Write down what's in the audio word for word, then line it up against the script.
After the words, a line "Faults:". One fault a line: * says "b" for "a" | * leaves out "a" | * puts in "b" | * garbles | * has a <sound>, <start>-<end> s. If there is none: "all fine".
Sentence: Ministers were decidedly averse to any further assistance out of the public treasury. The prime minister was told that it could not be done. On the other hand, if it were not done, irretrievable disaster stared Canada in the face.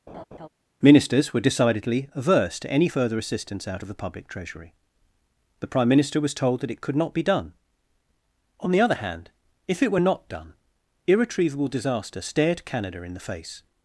Ministers were decidedly averse to any further assistance out of the public treasury. The prime minister was told that it could not be done. On the other hand, if it were not done, irretrievable disaster stared Canada in the face.
Faults:
* has a laugh, 0.1-0.5 s